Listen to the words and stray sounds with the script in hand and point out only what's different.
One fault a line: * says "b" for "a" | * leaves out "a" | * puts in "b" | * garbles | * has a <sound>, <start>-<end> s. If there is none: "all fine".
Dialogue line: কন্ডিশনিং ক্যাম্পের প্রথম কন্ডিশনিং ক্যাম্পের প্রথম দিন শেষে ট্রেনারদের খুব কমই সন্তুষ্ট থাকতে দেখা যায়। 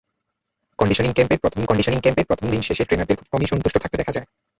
all fine